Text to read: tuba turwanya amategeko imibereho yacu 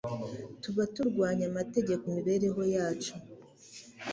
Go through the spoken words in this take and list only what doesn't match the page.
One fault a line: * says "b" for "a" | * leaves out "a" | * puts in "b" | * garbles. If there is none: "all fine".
all fine